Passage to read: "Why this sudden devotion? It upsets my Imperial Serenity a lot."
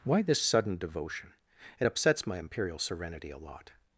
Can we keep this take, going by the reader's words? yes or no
yes